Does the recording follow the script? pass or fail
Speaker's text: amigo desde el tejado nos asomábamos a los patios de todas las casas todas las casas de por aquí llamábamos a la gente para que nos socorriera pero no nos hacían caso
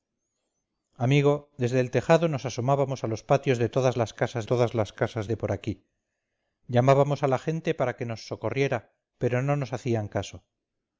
pass